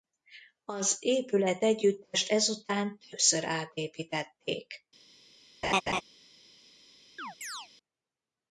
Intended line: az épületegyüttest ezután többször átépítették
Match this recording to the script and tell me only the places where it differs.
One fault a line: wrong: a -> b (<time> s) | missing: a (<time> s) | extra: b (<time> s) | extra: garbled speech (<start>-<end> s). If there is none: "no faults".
no faults